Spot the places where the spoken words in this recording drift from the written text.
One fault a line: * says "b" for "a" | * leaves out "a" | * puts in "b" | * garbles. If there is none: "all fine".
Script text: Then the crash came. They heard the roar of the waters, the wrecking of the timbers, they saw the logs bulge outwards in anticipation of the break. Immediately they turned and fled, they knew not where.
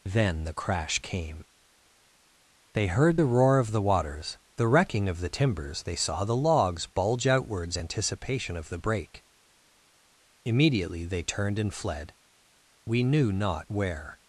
* leaves out "in"
* says "we" for "they"